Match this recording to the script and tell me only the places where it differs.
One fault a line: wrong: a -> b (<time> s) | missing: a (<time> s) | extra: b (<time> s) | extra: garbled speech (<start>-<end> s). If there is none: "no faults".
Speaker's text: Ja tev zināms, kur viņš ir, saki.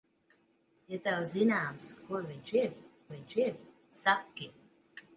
extra: viņš ir (3.1 s)